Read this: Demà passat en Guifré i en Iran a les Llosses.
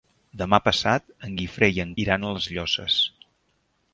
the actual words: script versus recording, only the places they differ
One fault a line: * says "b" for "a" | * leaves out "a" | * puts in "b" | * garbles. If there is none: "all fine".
all fine